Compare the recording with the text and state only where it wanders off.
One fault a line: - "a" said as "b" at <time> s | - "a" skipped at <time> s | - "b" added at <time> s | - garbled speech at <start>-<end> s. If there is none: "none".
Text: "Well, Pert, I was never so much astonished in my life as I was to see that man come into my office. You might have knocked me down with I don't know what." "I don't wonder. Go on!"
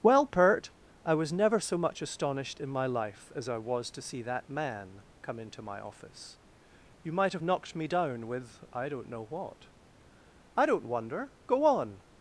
none